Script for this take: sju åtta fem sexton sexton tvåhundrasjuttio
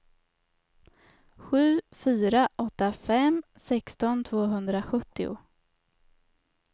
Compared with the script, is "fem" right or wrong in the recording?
right